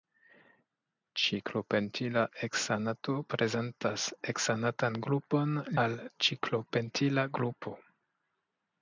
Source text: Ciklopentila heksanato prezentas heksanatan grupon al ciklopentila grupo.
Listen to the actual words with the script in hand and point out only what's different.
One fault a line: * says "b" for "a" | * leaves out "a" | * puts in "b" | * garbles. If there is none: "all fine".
all fine